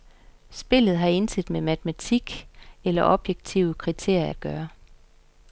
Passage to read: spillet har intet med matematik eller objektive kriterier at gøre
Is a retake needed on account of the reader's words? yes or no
no